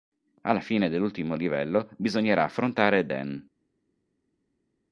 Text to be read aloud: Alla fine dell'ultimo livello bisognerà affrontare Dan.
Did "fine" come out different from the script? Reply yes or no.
no